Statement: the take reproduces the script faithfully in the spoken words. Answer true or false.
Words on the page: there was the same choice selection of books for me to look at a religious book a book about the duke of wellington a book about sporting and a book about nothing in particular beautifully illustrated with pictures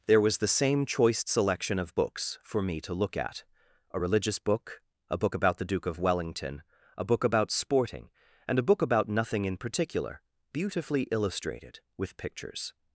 true